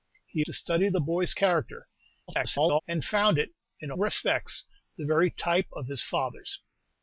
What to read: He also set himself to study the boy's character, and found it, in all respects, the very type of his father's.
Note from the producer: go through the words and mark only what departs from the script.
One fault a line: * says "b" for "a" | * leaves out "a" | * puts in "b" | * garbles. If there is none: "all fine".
* leaves out "also set himself"
* garbles
* leaves out "all"